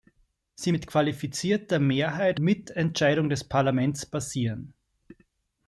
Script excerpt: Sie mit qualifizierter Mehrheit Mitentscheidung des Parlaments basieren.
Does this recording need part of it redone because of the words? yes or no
no